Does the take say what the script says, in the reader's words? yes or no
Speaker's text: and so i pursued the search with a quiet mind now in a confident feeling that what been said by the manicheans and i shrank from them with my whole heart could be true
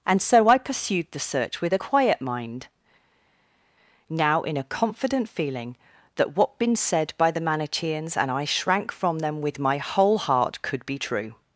yes